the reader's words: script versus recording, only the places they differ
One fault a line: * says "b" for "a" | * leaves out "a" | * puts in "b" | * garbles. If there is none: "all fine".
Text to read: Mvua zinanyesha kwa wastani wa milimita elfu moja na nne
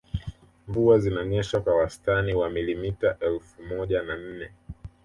all fine